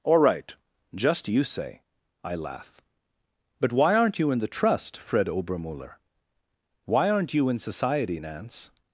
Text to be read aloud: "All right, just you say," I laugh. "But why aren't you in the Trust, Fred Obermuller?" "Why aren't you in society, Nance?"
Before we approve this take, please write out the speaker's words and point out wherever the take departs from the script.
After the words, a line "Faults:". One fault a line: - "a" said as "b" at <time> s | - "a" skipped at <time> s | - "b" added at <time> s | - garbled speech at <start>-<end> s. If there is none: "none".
"All right, just you say," I laugh. "But why aren't you in the Trust, Fred Obermuller?" "Why aren't you in society, Nance?"
Faults:
none